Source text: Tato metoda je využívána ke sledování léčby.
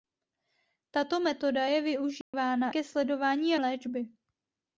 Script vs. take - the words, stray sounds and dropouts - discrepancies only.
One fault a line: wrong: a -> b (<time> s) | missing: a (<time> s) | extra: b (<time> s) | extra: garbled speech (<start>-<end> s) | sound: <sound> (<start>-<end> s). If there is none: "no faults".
sound: dropout (2.2-2.3 s)